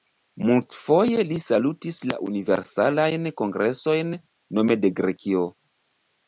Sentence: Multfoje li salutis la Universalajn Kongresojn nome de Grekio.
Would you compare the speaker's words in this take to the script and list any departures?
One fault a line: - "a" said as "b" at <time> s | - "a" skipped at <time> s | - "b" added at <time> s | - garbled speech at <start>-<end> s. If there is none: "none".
none